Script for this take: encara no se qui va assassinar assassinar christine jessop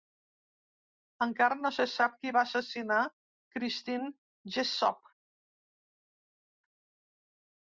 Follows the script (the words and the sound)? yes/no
no